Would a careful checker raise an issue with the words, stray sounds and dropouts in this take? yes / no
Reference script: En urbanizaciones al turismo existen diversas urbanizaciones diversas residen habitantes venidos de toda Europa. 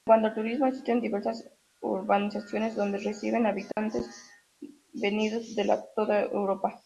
yes